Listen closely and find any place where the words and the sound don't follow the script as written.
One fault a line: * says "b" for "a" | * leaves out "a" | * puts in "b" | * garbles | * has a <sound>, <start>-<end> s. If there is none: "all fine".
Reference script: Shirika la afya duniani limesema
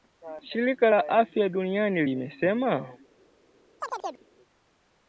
* has a chirp, 3.8-4.3 s